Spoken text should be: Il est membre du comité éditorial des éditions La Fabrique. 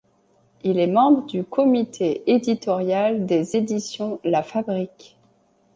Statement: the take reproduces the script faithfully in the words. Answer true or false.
true